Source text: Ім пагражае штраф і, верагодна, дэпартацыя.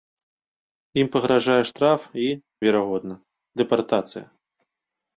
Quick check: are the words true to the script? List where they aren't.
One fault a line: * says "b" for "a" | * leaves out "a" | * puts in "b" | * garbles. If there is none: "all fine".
all fine